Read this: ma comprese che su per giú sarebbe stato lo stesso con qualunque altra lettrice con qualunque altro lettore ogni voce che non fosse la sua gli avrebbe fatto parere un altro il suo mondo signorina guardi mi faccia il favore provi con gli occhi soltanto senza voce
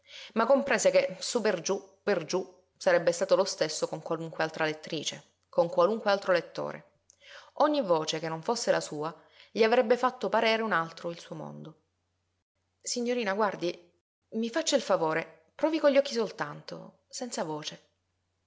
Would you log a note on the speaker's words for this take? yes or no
yes